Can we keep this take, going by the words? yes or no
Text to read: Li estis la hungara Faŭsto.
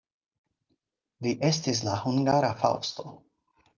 yes